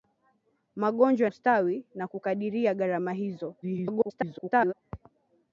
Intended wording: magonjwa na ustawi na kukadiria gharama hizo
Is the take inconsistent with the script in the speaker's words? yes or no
yes